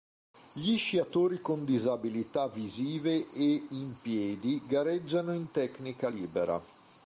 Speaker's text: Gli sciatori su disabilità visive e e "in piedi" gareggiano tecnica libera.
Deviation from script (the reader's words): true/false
true